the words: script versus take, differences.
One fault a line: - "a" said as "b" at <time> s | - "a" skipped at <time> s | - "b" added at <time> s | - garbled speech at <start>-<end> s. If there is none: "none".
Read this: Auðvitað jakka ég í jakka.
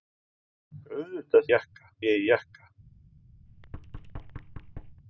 none